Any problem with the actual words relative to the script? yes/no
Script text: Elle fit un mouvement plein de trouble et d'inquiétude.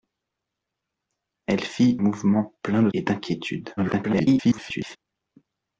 yes